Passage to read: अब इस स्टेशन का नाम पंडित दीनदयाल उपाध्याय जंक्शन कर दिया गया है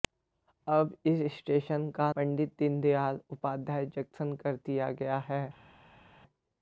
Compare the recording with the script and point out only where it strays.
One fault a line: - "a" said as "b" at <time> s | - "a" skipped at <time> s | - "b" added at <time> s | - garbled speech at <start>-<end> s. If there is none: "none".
- "नाम" skipped at 2.1 s